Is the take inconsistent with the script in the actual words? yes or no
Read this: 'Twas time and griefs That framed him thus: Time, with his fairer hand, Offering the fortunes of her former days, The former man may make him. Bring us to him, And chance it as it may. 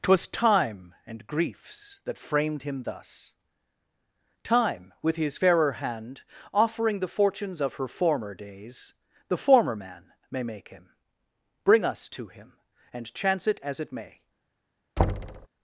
no